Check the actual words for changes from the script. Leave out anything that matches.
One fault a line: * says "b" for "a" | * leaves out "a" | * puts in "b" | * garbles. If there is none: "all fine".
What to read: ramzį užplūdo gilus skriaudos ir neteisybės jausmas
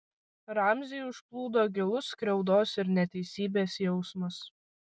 all fine